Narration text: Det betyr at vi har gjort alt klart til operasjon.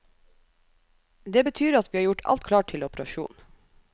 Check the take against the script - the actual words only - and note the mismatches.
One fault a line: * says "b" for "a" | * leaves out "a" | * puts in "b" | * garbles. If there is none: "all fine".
all fine